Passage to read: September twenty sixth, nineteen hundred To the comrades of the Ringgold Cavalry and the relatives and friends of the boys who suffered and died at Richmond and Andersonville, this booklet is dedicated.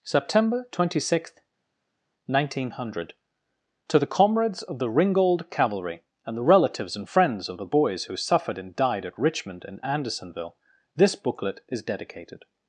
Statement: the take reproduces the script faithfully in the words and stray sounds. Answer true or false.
true